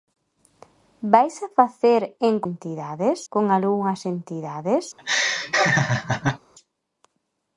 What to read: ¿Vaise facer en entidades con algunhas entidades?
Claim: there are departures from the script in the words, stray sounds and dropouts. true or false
true